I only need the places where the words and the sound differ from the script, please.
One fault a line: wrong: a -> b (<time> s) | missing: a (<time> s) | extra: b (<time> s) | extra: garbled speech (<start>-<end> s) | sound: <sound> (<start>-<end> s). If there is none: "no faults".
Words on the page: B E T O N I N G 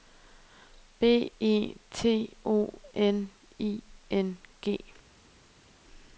no faults